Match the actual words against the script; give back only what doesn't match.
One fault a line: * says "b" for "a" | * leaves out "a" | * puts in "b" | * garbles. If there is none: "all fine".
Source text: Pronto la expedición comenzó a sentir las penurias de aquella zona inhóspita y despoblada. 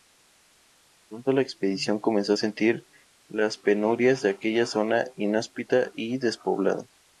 all fine